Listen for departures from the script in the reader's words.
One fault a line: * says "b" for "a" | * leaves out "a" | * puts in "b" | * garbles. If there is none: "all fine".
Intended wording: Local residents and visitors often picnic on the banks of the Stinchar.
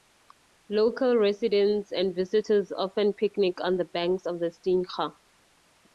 all fine